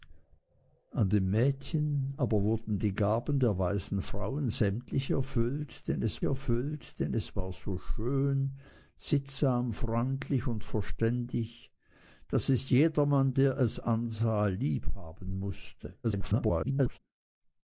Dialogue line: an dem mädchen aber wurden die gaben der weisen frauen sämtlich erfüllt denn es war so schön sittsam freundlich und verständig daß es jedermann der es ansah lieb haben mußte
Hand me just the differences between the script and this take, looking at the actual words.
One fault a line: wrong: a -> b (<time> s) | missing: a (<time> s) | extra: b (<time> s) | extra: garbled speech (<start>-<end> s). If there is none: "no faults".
extra: erfüllt denn es (6.2 s)
extra: garbled speech (16.0-17.0 s)